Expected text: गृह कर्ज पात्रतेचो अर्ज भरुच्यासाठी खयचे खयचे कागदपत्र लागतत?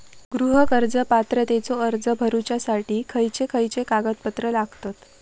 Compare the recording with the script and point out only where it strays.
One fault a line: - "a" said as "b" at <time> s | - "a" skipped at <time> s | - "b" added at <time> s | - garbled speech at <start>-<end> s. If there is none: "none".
none